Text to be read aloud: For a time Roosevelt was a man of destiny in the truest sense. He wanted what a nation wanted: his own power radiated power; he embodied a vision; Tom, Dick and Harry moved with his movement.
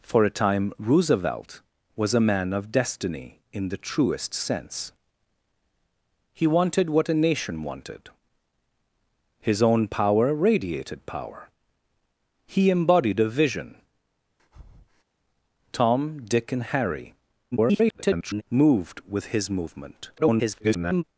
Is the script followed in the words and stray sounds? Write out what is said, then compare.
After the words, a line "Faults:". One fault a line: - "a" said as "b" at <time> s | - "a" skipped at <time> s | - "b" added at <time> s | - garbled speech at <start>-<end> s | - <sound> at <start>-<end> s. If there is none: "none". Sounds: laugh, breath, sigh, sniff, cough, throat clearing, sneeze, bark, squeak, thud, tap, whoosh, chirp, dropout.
For a time Roosevelt was a man of destiny in the truest sense. He wanted what a nation wanted: his own power radiated power; he embodied a vision; Tom, Dick and Harry [garbled] moved with his movement. [garbled]
Faults:
- breath at 14.4-15.0 s
- garbled speech at 17.5-18.4 s
- garbled speech at 20.2-21.0 s